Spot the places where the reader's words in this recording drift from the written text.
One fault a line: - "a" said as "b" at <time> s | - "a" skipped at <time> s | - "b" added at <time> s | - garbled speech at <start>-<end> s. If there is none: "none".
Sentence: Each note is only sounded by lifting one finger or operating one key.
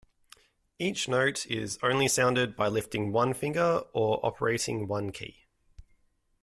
none